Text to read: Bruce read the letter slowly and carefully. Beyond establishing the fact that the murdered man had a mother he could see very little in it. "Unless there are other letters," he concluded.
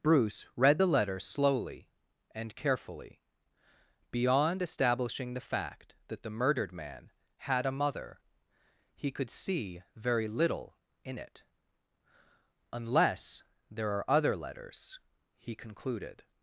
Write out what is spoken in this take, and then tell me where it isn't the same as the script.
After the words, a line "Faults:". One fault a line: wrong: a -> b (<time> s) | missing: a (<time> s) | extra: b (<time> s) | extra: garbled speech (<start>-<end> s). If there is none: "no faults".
Bruce read the letter slowly and carefully. Beyond establishing the fact that the murdered man had a mother he could see very little in it. "Unless there are other letters," he concluded.
Faults:
no faults